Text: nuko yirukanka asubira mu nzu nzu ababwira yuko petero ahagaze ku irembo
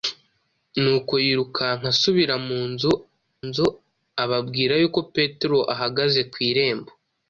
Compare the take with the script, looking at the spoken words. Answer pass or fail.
pass